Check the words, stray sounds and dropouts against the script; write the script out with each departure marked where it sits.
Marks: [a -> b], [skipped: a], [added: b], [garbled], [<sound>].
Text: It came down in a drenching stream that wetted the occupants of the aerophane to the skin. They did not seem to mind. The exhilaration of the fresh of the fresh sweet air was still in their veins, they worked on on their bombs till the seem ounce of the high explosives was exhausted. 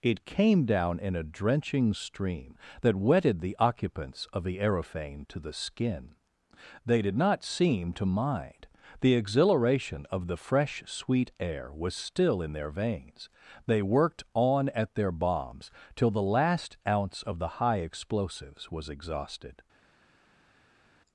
It came down in a drenching stream that wetted the occupants of the aerophane to the skin. They did not seem to mind. The exhilaration of the fresh [skipped: of the fresh] sweet air was still in their veins, they worked on [on -> at] their bombs till the [seem -> last] ounce of the high explosives was exhausted.